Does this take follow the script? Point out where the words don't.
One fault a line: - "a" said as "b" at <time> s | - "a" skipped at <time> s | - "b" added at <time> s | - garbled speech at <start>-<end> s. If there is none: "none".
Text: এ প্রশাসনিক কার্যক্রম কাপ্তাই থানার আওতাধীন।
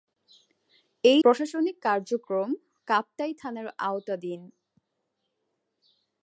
none